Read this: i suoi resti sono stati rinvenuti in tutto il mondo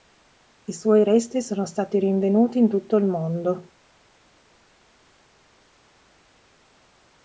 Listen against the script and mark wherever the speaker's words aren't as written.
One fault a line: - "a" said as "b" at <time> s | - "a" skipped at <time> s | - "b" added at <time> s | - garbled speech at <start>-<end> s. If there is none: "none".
none